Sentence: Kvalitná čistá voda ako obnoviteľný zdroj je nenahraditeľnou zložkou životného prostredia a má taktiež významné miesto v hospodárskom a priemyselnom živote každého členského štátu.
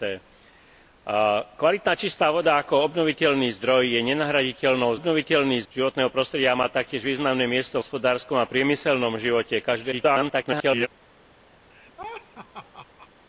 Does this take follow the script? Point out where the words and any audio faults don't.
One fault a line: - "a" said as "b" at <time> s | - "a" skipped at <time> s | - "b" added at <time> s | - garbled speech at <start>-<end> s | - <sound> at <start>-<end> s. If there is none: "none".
- "zložkou" said as "obnoviteľný" at 4.9 s
- "v" skipped at 7.8 s
- garbled speech at 9.9-10.9 s
- laugh at 11.7-13.1 s